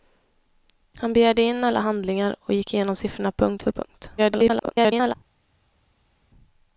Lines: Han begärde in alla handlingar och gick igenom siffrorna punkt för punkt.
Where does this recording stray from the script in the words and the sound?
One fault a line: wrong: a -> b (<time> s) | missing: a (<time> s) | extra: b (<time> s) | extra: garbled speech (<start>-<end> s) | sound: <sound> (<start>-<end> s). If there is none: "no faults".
extra: garbled speech (4.2-5.1 s)